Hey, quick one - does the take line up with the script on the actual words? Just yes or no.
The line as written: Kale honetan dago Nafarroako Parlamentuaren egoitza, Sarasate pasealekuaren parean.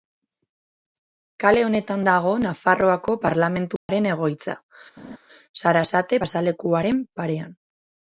yes